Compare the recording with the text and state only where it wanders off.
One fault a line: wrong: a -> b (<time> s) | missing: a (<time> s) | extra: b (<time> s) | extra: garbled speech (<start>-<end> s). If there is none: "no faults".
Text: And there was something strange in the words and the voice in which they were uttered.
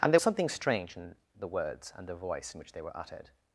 missing: was (0.2 s)